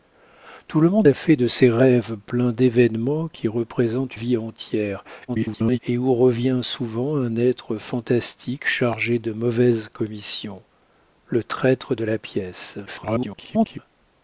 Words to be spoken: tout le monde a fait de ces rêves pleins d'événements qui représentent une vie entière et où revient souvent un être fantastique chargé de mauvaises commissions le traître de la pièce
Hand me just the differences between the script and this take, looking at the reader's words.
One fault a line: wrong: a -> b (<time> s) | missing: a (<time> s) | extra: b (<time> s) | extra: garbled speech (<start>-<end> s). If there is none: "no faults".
missing: une (4.2 s)
extra: garbled speech (5.3-5.8 s)
extra: garbled speech (12.9-13.8 s)